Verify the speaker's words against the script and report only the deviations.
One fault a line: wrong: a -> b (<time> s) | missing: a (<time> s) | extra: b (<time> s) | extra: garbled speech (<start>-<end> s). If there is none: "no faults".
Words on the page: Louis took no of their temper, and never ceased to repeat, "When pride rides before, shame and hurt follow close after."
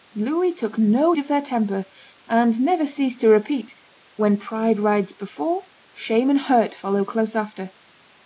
no faults